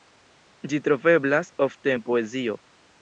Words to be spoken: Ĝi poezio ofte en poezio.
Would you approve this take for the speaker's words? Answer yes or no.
no